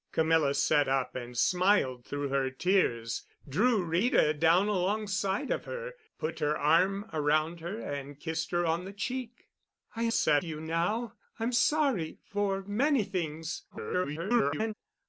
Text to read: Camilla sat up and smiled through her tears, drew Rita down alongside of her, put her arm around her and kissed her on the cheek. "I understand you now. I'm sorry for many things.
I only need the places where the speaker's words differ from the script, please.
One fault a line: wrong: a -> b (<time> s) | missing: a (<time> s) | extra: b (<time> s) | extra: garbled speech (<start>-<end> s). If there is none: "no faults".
wrong: understand -> sat (10.1 s)
extra: garbled speech (13.7-14.7 s)